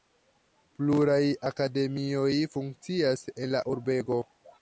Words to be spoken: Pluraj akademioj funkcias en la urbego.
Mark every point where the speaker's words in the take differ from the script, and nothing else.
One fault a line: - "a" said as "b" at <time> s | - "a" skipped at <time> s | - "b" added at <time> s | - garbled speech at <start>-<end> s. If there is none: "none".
none